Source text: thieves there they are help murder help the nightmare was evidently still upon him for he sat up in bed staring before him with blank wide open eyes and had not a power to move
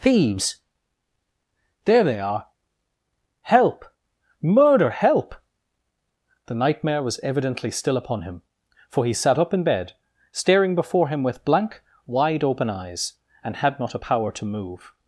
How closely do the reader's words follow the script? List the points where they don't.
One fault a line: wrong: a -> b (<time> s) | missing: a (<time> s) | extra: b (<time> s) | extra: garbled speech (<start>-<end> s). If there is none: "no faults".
no faults